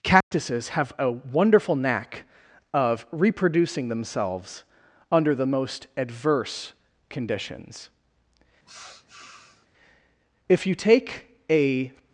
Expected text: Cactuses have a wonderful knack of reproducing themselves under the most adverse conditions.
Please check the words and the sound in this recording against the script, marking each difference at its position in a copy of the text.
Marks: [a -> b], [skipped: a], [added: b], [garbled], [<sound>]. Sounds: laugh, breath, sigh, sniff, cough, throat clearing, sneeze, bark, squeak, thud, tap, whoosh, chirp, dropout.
Cactuses [dropout] have a wonderful knack of reproducing themselves under the most adverse conditions. [sniff] [added: If you take a]